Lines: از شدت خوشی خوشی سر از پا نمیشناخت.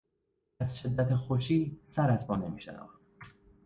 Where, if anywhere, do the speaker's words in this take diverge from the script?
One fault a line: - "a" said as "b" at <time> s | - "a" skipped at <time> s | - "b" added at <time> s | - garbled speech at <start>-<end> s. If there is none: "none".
- "خوشی" skipped at 1.8 s